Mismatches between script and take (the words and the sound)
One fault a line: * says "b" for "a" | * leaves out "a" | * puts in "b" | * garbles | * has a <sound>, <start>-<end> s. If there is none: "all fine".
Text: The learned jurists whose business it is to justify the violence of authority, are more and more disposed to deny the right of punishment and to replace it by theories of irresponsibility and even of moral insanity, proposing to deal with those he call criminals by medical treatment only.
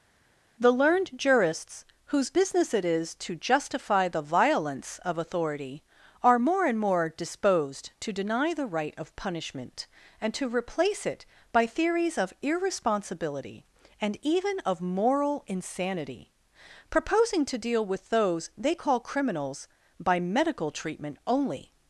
* says "they" for "he"